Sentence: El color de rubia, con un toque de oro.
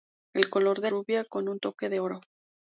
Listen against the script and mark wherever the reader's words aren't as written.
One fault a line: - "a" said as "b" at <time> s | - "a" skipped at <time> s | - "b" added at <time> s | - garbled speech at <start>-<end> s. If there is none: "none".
none